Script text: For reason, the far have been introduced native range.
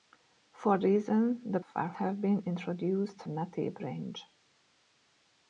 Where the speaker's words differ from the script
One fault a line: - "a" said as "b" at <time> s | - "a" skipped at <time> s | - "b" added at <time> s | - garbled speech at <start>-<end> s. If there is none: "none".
none